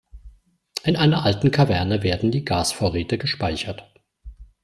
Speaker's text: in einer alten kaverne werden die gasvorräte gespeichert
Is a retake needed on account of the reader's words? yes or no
no